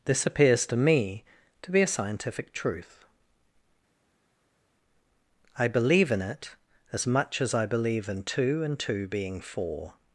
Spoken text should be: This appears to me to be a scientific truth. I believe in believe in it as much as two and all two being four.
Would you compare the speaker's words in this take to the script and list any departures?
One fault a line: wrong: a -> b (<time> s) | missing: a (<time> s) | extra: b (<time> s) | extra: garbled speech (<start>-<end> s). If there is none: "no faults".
missing: believe in (6.2 s)
extra: I believe in (7.5 s)
missing: all (8.8 s)